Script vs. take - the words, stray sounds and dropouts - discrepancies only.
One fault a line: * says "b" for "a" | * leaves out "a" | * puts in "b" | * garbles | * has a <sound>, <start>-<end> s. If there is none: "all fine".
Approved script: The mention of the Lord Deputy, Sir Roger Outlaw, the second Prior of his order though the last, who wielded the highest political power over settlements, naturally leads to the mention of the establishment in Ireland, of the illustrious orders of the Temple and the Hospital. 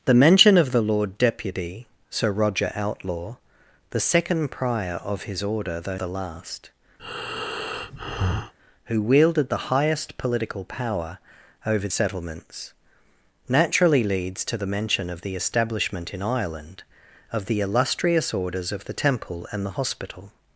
* has a breath, 7.0-8.5 s